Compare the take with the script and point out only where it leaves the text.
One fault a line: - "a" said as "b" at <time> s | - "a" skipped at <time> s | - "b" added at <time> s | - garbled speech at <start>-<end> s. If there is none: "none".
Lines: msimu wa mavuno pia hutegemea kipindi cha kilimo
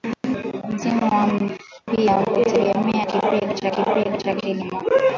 - "mavuno" skipped at 1.3 s
- "kipindi cha" added at 3.7 s